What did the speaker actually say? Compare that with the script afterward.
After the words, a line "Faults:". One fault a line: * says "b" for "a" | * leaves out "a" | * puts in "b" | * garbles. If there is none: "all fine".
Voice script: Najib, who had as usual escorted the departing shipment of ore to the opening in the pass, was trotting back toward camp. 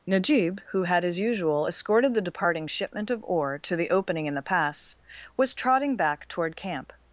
Najib, who had as usual escorted the departing shipment of ore to the opening in the pass, was trotting back toward camp.
Faults:
all fine